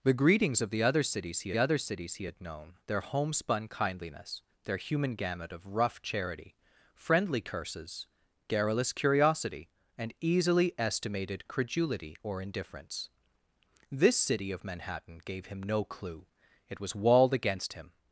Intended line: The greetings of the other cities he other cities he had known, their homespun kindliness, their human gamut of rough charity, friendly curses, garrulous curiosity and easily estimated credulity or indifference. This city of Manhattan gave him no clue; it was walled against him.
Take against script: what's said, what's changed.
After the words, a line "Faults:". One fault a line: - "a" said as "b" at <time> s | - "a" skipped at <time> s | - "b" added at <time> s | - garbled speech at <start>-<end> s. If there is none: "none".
The greetings of the other cities he other cities he had known, their homespun kindliness, their human gamut of rough charity, friendly curses, garrulous curiosity and easily estimated credulity or indifference. This city of Manhattan gave him no clue; it was walled against him.
Faults:
none